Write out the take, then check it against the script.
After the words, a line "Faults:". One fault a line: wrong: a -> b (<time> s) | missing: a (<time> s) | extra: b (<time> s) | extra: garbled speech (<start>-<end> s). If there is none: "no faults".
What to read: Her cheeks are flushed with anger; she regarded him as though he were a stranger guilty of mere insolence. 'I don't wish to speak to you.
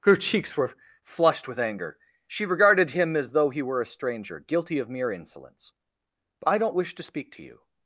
Her cheeks were flushed with anger; she regarded him as though he were a stranger guilty of mere insolence. 'I don't wish to speak to you.
Faults:
wrong: are -> were (0.6 s)